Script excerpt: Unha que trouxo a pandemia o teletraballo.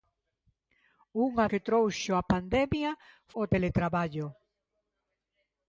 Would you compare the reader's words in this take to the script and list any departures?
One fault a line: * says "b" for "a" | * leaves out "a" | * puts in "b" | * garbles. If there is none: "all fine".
all fine